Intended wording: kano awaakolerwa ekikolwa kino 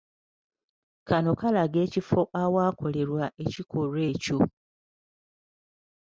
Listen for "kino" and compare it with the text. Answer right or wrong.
wrong